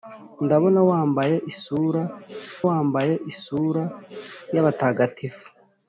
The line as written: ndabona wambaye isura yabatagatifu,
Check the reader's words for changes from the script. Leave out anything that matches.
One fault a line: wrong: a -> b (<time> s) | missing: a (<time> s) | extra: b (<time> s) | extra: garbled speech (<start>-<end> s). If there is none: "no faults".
extra: wambaye isura (2.7 s)